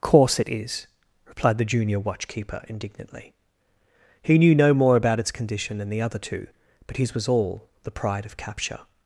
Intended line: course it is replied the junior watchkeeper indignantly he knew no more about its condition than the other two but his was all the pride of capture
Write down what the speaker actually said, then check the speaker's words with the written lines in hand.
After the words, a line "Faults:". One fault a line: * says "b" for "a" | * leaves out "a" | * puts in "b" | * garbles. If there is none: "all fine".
course it is replied the junior watchkeeper indignantly he knew no more about its condition than the other two but his was all the pride of capture
Faults:
all fine